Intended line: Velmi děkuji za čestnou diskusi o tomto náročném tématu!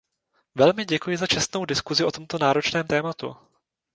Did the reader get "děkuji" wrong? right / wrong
right